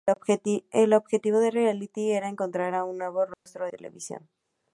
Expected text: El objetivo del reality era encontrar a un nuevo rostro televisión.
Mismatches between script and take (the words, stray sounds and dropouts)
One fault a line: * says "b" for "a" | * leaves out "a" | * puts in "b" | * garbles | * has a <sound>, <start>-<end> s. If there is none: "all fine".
* has a dropout, 3.3-3.5 s